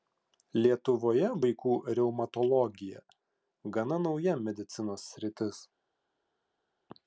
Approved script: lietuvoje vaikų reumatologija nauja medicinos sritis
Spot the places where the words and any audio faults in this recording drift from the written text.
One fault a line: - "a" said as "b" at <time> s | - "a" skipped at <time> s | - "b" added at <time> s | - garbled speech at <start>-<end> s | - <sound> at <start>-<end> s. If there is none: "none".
- "gana" added at 3.8 s